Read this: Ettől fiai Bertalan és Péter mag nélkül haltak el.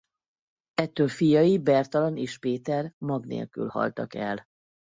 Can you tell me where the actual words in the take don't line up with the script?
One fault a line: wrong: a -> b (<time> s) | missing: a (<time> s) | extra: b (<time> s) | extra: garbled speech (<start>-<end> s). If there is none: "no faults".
no faults